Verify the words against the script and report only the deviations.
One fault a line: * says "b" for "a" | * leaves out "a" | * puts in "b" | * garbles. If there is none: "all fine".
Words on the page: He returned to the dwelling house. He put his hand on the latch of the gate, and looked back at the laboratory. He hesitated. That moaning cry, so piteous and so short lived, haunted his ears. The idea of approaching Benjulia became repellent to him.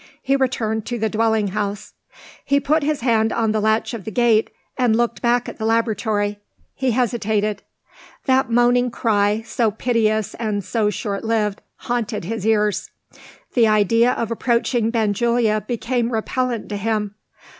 all fine